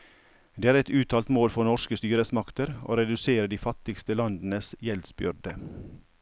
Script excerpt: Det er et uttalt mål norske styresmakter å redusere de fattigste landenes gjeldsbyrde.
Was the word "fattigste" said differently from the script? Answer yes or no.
no